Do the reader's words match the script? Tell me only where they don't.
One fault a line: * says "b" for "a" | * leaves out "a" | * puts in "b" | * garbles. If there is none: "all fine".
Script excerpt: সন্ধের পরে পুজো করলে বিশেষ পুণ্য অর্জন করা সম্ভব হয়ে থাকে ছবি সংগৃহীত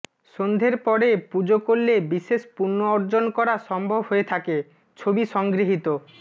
all fine